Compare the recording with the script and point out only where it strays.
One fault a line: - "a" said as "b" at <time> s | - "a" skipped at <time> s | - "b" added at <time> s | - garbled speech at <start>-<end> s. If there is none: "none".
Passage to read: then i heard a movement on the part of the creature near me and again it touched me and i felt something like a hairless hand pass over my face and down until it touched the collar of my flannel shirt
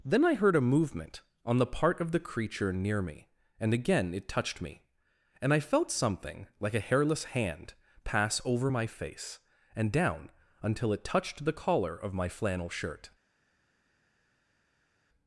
none